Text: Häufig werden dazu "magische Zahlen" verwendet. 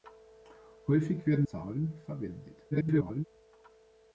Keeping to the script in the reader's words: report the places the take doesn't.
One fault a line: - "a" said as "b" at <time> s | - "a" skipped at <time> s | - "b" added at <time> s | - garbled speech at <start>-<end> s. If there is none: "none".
- "dazu magische" skipped at 1.4 s
- garbled speech at 2.7-3.2 s